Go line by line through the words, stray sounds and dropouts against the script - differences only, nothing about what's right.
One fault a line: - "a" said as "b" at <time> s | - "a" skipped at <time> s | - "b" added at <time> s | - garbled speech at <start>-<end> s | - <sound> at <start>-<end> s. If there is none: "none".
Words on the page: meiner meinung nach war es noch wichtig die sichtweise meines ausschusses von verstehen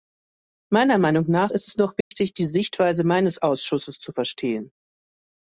- "war" said as "ist" at 1.5 s
- dropout at 2.0-2.1 s
- "von" said as "zu" at 4.0 s